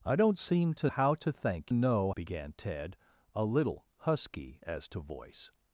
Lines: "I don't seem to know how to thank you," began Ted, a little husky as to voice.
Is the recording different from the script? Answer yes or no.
yes